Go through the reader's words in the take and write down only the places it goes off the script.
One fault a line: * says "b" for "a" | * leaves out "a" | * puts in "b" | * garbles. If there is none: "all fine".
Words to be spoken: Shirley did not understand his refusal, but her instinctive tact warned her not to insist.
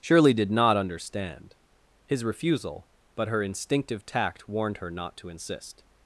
all fine